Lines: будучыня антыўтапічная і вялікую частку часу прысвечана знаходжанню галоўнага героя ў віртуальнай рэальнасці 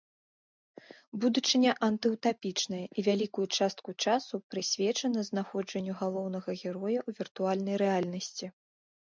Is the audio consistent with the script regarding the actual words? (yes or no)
yes